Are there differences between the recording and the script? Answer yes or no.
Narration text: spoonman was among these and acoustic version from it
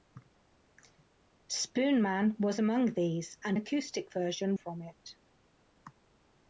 no